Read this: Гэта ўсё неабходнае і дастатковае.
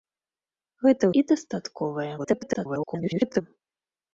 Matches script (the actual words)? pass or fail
fail